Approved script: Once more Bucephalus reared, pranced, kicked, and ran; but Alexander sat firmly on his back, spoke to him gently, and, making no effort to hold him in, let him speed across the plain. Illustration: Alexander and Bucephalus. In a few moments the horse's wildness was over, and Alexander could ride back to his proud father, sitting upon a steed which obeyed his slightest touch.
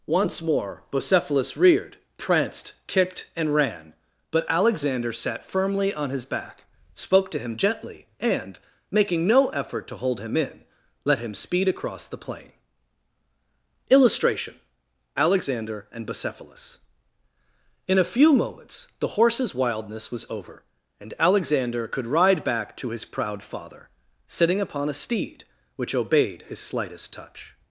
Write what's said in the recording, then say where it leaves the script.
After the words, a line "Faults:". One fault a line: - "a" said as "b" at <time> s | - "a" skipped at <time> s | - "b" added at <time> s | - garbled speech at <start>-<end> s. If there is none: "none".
Once more Bucephalus reared, pranced, kicked, and ran; but Alexander sat firmly on his back, spoke to him gently, and, making no effort to hold him in, let him speed across the plain. Illustration: Alexander and Bucephalus. In a few moments the horse's wildness was over, and Alexander could ride back to his proud father, sitting upon a steed which obeyed his slightest touch.
Faults:
none